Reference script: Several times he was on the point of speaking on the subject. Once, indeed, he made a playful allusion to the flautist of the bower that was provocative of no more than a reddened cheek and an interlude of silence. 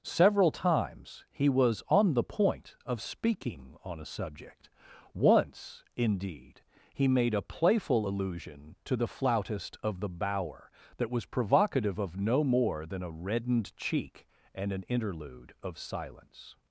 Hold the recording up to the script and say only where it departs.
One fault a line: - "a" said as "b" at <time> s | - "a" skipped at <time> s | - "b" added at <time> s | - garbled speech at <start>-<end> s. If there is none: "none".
- "the" said as "a" at 4.0 s